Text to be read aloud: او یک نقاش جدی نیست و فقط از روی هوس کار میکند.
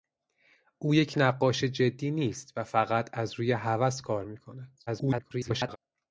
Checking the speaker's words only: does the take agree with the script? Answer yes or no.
no